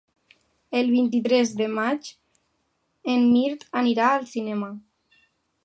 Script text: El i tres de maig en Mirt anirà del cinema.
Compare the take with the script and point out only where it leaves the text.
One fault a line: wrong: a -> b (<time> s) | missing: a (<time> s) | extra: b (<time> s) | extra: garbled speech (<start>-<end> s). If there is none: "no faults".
extra: vint (0.9 s)
wrong: del -> al (4.2 s)